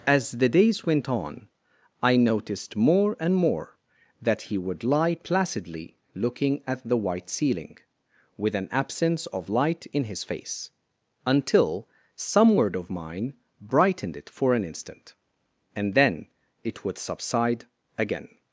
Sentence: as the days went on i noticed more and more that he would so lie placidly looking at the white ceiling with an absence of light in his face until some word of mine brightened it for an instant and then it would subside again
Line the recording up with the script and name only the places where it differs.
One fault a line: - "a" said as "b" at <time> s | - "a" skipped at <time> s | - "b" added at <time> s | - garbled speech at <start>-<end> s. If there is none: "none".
- "so" skipped at 4.8 s